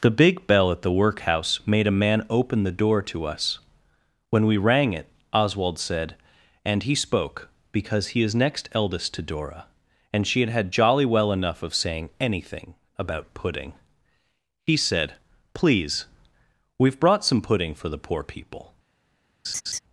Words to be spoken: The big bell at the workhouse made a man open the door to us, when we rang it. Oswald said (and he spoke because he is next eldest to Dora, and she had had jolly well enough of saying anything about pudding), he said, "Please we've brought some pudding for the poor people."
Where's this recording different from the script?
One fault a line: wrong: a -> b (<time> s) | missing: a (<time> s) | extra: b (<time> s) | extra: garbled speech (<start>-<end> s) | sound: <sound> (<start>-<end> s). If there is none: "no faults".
sound: laugh (19.4-19.8 s)